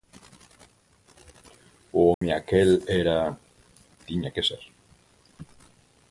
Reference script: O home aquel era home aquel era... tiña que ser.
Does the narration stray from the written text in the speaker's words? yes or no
yes